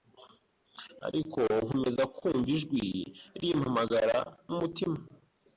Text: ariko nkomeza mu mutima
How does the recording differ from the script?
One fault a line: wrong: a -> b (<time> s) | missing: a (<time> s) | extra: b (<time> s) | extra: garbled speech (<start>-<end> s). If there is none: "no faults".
extra: kumva ijwi rimpamagara (2.1 s)